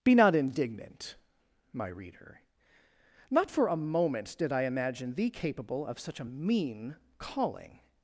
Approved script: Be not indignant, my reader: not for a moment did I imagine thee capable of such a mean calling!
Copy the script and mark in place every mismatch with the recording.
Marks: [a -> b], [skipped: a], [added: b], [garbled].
Be not indignant, my reader: not for a moment did I imagine thee capable of such a mean calling!